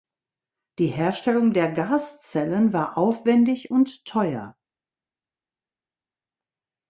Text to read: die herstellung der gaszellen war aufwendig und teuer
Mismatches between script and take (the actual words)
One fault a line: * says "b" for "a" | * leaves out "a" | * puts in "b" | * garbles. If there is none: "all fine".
all fine